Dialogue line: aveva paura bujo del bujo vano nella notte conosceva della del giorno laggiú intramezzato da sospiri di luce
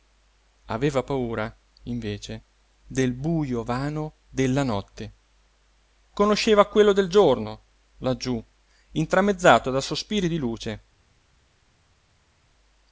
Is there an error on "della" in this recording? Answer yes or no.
yes